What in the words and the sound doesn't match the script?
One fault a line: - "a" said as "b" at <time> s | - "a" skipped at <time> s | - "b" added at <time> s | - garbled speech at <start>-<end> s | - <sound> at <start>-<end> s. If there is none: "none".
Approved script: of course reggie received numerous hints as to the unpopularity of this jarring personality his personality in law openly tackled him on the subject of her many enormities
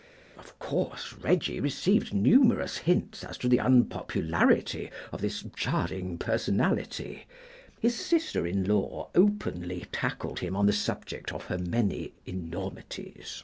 - "personality" said as "sister" at 8.0 s